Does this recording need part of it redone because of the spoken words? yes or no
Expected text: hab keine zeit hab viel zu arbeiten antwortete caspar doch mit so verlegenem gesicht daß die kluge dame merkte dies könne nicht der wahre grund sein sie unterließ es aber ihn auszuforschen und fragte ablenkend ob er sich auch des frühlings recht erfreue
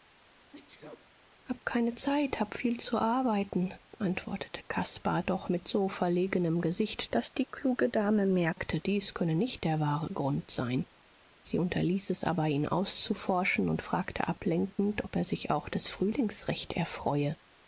no